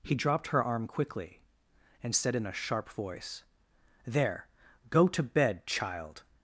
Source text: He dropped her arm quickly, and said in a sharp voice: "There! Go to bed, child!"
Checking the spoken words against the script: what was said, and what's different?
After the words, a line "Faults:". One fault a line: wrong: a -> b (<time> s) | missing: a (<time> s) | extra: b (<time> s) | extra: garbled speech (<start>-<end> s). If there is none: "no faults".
He dropped her arm quickly, and said in a sharp voice: "There! Go to bed, child!"
Faults:
no faults